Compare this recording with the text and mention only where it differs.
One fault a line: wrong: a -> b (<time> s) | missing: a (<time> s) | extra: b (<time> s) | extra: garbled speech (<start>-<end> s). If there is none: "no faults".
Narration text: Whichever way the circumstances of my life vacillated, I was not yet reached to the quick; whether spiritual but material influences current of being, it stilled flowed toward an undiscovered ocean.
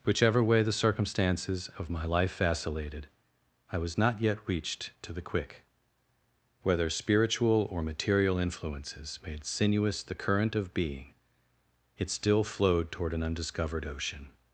wrong: but -> or (7.7 s)
extra: made sinuous the (9.3 s)
wrong: stilled -> still (12.1 s)